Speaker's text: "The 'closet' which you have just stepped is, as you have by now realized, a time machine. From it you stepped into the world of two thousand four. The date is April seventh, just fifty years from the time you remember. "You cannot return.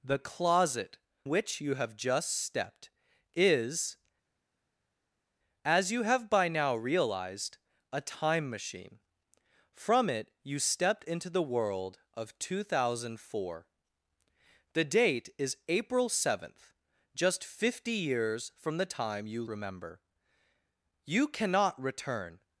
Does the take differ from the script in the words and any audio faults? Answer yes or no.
no